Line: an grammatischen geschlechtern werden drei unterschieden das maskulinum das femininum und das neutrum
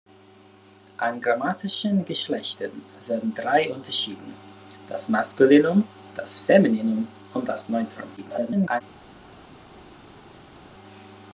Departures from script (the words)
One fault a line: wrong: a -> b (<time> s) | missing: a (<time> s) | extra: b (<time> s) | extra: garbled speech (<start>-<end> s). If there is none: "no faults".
extra: garbled speech (8.2-8.8 s)